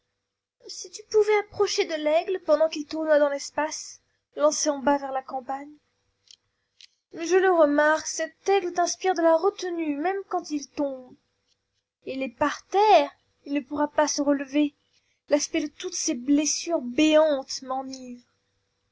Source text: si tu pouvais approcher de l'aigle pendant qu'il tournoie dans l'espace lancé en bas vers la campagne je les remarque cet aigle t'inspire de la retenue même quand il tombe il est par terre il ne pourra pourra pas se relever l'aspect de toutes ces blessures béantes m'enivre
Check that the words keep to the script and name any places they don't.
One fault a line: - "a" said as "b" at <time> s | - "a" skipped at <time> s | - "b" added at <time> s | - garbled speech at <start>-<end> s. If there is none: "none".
- "les" said as "le" at 7.3 s
- "pourra" skipped at 13.9 s